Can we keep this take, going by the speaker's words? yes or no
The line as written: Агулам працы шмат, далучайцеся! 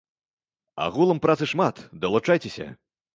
yes